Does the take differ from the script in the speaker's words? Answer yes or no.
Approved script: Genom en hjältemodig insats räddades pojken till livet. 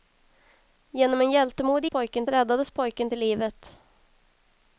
yes